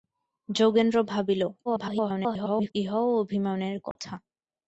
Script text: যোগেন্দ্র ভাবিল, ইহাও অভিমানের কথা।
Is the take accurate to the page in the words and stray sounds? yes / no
no